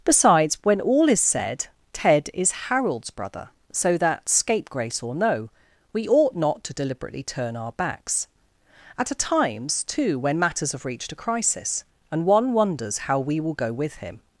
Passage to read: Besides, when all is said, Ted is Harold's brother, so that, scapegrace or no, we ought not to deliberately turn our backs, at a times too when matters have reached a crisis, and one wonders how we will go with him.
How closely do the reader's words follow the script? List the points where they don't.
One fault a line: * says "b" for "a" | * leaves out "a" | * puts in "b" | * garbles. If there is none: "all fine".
all fine